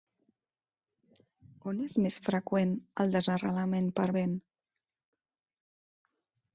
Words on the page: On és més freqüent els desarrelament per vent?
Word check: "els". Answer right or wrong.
wrong